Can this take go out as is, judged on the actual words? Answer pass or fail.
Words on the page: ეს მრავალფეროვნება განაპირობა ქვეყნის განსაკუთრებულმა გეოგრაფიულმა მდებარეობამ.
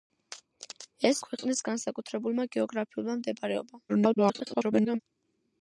fail